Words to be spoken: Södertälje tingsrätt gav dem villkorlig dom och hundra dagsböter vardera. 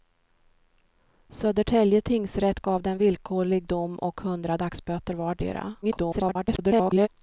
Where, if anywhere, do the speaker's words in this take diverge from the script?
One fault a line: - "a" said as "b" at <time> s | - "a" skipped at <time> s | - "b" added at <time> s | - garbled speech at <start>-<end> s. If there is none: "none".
- garbled speech at 5.8-7.1 s